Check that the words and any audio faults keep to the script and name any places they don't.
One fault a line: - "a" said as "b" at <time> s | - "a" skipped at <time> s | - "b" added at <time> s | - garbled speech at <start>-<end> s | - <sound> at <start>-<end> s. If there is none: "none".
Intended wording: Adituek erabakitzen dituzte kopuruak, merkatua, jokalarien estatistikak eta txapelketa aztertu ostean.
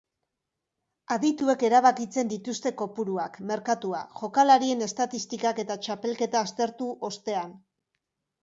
none